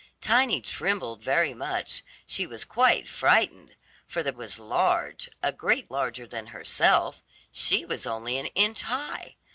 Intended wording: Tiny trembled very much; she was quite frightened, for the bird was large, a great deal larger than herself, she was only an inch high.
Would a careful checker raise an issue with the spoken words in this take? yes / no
yes